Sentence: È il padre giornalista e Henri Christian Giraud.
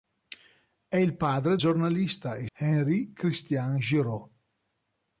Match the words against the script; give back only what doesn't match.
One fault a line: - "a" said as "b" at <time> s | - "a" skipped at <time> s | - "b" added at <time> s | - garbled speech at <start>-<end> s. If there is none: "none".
none